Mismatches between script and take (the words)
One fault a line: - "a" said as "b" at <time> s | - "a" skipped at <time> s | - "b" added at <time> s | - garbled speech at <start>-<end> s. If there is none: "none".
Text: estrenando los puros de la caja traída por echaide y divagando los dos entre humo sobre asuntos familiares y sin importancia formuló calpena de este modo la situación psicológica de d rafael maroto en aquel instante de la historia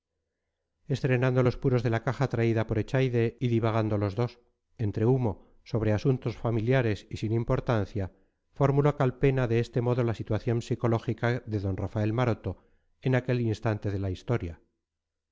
none